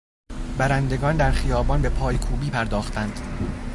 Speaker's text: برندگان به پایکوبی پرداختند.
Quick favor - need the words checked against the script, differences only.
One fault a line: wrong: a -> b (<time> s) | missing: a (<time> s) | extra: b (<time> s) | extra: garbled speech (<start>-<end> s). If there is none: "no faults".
extra: در خیابان (1.1 s)